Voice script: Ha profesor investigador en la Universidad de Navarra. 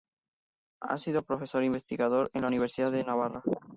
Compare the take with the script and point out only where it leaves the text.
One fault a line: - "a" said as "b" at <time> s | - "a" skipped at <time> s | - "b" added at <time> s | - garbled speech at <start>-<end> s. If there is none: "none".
- "sido" added at 1.0 s